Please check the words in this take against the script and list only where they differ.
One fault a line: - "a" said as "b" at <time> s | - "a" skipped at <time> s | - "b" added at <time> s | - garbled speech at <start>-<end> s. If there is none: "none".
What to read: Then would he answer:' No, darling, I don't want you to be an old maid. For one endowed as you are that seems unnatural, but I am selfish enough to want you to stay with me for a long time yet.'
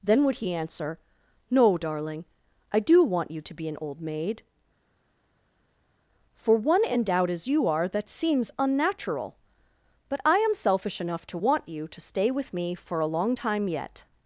- "don't" said as "do" at 2.8 s